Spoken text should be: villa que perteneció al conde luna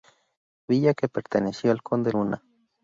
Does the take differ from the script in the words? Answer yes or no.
no